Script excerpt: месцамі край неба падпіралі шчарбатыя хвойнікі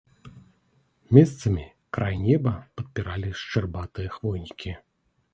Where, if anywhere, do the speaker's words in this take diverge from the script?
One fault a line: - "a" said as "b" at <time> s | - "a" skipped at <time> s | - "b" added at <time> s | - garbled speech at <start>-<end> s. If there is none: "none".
none